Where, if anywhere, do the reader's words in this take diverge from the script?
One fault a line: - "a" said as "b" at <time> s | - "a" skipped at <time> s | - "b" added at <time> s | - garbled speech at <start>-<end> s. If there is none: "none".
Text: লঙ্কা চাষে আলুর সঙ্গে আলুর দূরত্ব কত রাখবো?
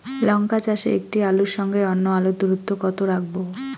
- "একটি" added at 0.9 s
- "অন্য" added at 1.9 s